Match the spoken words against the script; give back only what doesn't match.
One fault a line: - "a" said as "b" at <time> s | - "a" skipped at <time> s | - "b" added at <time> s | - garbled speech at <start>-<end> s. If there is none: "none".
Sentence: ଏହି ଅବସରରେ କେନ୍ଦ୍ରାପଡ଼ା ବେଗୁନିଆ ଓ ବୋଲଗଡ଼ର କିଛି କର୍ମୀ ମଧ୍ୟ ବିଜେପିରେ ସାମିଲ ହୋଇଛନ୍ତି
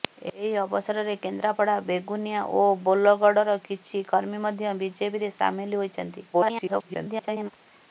- garbled speech at 6.3-7.5 s